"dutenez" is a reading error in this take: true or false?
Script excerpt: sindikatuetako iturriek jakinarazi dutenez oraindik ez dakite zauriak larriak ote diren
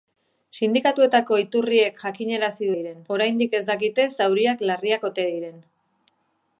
true